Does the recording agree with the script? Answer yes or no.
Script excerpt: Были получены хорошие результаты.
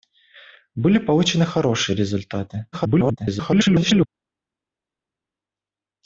no